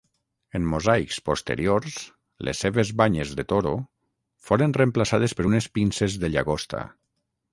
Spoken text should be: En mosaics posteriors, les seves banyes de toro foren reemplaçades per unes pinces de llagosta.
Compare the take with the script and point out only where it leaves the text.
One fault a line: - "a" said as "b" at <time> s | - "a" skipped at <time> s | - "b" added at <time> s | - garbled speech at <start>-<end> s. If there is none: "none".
none